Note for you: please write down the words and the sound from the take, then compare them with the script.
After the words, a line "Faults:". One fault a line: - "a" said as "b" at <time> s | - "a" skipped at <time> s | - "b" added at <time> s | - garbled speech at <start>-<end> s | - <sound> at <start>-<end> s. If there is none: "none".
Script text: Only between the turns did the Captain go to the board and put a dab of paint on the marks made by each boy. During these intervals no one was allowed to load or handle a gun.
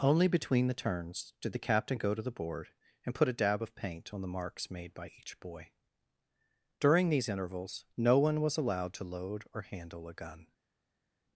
Only between the turns did the Captain go to the board and put a dab of paint on the marks made by each boy. During these intervals no one was allowed to load or handle a gun.
Faults:
none